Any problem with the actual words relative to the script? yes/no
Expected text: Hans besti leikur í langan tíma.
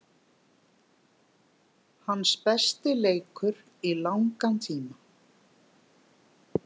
no